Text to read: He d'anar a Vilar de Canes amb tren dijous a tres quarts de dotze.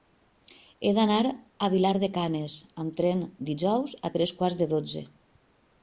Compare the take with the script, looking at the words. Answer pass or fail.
pass